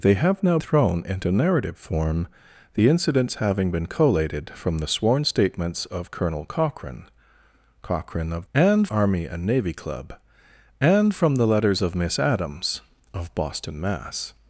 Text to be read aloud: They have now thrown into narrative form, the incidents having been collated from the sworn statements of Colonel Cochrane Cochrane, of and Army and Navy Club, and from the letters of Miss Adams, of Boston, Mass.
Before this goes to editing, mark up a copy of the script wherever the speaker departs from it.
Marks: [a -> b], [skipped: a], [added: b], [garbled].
They have now thrown into narrative form, the incidents having been collated from the sworn statements of Colonel Cochrane Cochrane, of and Army and Navy Club, and from the letters of Miss Adams, of Boston, Mass.